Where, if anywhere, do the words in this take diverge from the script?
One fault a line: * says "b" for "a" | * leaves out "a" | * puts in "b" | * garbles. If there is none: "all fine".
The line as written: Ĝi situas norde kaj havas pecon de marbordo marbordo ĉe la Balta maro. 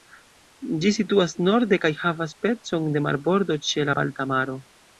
* leaves out "marbordo"